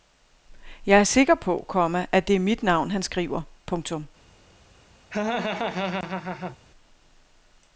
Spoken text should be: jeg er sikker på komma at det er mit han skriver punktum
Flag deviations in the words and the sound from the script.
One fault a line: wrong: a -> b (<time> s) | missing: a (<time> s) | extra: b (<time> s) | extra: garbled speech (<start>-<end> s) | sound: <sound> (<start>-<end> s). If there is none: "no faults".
extra: navn (2.6 s)
sound: laugh (5.1-6.6 s)